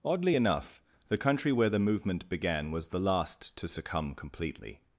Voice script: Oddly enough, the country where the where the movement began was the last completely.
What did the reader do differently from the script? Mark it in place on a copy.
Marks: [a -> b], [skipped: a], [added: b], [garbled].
Oddly enough, the country where the [skipped: where the] movement began was the last [added: to succumb] completely.